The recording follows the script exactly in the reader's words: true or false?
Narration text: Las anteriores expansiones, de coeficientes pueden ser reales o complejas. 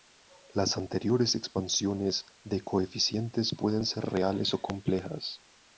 true